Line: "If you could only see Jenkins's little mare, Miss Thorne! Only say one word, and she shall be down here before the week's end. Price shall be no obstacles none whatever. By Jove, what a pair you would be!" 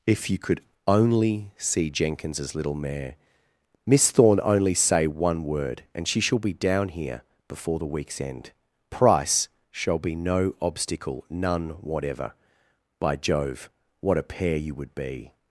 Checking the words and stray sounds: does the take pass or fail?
fail